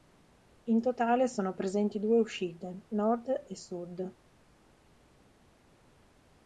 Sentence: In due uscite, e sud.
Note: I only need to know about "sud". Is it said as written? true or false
true